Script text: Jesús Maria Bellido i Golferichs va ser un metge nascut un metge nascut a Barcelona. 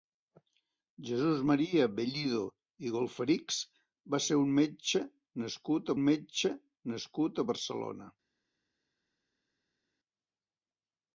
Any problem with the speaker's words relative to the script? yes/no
no